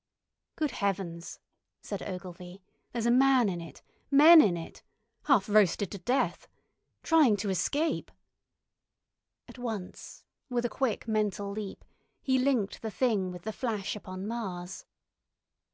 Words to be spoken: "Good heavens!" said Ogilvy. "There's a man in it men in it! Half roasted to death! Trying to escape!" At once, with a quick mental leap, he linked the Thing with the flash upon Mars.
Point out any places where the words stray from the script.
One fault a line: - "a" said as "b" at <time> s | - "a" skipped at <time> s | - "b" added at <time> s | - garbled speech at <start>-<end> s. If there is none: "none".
none